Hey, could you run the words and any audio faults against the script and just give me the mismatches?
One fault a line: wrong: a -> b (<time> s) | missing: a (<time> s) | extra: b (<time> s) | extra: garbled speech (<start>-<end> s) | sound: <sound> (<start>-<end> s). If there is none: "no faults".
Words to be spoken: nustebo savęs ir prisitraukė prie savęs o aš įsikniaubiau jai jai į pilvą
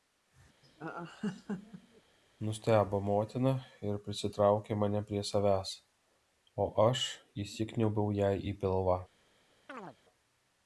sound: laugh (0.6-2.0 s)
wrong: savęs -> motina (3.1 s)
extra: mane (4.8 s)
missing: jai (8.3 s)
sound: chirp (9.7-10.0 s)